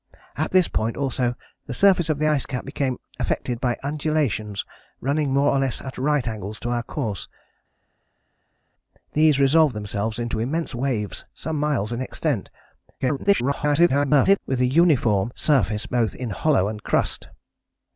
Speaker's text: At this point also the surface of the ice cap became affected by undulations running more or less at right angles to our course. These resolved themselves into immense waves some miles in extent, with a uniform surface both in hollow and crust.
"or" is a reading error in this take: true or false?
false